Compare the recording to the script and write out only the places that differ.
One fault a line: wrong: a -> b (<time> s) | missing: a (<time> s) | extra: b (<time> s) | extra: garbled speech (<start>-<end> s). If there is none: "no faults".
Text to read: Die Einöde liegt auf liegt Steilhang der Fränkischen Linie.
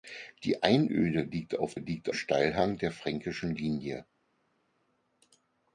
no faults